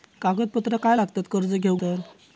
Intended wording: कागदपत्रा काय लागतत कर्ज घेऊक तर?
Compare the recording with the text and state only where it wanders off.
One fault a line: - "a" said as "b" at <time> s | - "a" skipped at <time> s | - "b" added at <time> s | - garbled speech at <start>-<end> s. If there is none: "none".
none